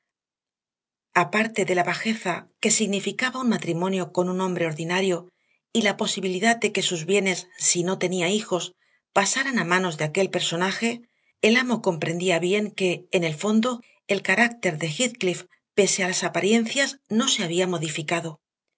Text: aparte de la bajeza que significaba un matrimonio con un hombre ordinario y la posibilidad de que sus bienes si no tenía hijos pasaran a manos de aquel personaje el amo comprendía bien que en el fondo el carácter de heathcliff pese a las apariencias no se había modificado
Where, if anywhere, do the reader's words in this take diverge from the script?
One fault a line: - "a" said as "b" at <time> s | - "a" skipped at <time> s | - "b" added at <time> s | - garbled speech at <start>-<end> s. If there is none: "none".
none